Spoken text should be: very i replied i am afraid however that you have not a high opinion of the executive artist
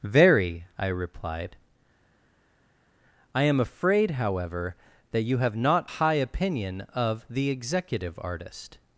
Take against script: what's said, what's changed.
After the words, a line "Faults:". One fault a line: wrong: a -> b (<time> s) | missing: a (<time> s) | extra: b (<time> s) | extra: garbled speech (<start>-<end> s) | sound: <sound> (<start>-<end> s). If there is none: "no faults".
very i replied i am afraid however that you have not high opinion of the executive artist
Faults:
missing: a (5.9 s)